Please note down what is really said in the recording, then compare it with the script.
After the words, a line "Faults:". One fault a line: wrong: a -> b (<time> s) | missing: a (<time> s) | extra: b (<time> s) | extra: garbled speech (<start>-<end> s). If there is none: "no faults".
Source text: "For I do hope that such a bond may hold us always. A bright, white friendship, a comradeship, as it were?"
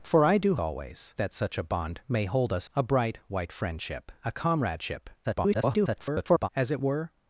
"For I do always that such a bond may hold us. A bright, white friendship, a comradeship, [garbled] as it were?"
Faults:
wrong: hope -> always (0.6 s)
missing: always (2.7 s)
extra: garbled speech (5.2-6.5 s)